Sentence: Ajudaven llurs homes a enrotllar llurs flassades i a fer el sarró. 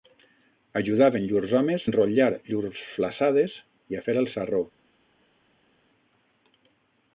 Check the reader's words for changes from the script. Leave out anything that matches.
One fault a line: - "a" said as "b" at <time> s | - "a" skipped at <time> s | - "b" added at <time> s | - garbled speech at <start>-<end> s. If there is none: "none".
- "a" skipped at 1.9 s